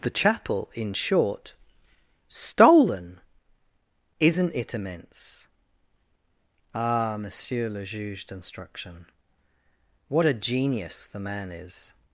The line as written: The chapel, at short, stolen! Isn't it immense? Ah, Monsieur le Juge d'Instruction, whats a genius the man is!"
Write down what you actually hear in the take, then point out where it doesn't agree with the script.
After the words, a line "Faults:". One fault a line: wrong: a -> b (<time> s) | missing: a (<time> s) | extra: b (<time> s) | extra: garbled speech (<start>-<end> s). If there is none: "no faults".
The chapel, in short, stolen! Isn't it immense? Ah, Monsieur le Juge d'Instruction, what a genius the man is!"
Faults:
wrong: at -> in (0.7 s)
wrong: whats -> what (10.1 s)